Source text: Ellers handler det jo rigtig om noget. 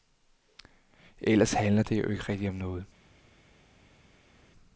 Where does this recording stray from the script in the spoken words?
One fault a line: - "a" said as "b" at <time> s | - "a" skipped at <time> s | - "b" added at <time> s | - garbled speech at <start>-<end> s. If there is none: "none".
- "ikke" added at 2.1 s